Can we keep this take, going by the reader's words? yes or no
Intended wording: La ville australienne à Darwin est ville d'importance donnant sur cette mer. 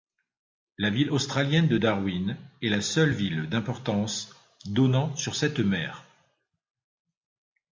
no